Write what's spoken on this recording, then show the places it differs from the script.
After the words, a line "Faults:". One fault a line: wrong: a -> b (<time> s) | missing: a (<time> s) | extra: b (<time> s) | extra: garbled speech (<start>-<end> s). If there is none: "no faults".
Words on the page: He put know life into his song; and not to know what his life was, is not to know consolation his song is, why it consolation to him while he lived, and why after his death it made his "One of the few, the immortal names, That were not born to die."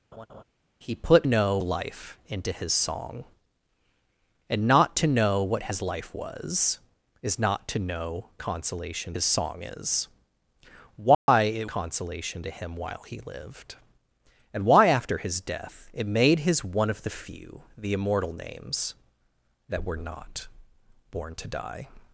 He put know life into his song; and not to know what his life was, is not to know consolation his song is, why it consolation to him while he lived, and why after his death it made his "One of the few, the immortal names, That were not born to die."
Faults:
no faults